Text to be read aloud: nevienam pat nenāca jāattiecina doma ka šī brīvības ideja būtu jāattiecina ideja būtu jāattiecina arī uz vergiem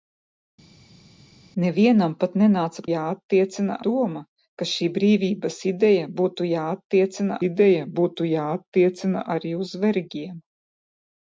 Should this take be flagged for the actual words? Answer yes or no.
no